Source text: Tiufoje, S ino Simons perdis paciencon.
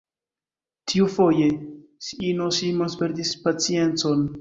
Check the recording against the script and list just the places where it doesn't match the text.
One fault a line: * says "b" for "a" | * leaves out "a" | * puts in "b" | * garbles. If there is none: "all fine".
all fine